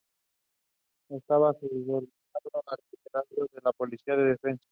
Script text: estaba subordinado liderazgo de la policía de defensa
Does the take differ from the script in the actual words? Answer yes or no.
yes